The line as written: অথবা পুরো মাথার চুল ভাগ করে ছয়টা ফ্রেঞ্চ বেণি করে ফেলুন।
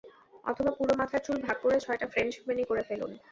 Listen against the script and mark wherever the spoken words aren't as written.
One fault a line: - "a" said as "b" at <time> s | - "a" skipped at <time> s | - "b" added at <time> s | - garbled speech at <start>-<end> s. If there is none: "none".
none